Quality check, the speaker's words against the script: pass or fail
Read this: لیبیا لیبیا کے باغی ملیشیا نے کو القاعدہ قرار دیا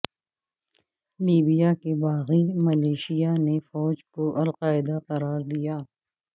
fail